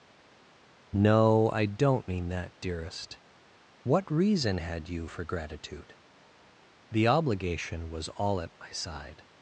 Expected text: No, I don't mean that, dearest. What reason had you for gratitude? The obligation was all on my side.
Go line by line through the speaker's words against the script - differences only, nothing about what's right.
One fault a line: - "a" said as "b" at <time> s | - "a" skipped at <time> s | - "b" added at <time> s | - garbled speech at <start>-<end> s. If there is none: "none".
- "on" said as "at" at 8.4 s